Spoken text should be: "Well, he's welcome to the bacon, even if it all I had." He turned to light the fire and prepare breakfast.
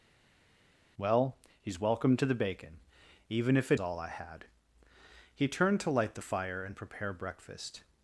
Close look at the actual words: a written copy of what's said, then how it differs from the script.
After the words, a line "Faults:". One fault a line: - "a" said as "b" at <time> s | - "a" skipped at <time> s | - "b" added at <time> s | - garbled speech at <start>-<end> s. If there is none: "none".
"Well, he's welcome to the bacon, even if it all I had." He turned to light the fire and prepare breakfast.
Faults:
none